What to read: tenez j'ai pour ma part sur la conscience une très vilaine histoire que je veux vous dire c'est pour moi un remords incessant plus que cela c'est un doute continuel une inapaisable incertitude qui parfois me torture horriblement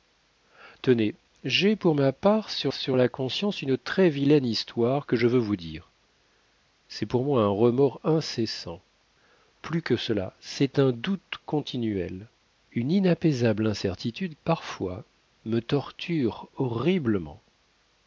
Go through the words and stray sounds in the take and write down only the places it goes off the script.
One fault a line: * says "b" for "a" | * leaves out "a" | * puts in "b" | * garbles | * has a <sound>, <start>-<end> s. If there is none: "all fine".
* puts in "sur"
* leaves out "qui"